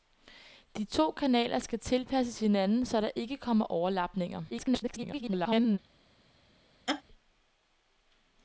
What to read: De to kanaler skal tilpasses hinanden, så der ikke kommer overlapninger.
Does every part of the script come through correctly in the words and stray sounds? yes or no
no